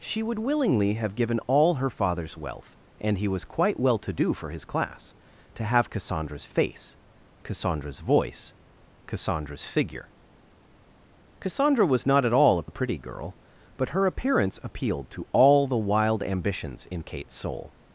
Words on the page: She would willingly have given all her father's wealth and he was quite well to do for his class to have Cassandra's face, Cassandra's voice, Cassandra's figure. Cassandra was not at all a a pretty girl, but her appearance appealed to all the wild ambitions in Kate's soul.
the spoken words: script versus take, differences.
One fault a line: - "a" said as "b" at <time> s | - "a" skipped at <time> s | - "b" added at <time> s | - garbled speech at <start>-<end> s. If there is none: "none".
none